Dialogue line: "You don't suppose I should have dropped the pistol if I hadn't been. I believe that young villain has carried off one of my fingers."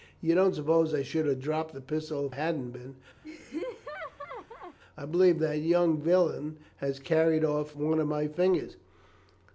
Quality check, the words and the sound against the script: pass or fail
fail